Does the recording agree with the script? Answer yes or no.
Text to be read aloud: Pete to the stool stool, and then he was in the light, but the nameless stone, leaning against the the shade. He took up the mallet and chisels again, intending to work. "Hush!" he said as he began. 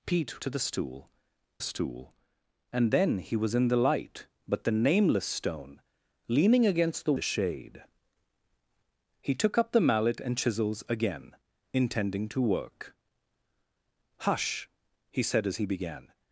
yes